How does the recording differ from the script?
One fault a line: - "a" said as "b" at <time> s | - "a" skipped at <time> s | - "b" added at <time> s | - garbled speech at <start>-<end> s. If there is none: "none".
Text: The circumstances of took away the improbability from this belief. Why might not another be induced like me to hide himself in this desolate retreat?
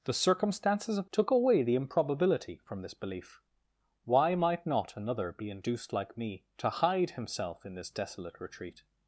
none